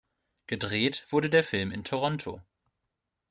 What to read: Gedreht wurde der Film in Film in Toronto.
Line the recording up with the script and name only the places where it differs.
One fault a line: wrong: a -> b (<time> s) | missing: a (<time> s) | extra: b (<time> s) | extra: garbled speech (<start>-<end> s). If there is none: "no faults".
missing: Film in (1.8 s)